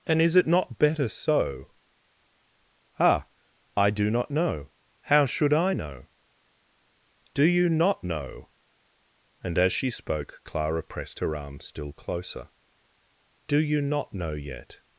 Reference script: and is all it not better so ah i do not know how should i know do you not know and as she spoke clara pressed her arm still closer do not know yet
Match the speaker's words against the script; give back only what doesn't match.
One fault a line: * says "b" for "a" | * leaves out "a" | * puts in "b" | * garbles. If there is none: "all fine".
* leaves out "all"
* puts in "you"